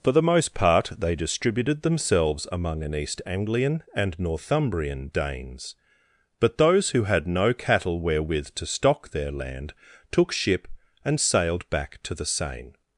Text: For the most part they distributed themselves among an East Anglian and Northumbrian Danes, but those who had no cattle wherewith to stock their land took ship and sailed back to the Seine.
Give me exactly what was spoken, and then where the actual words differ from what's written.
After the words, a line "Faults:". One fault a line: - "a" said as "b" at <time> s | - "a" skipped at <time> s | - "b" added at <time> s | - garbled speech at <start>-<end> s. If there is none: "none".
For the most part they distributed themselves among an East Anglian and Northumbrian Danes, but those who had no cattle wherewith to stock their land took ship and sailed back to the Seine.
Faults:
none